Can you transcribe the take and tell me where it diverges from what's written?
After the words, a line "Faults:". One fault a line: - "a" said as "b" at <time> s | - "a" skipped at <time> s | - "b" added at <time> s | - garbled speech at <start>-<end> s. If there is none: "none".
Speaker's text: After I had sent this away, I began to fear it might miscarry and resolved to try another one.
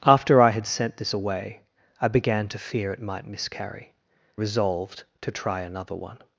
After I had sent this away, I began to fear it might miscarry resolved to try another one.
Faults:
- "and" skipped at 3.9 s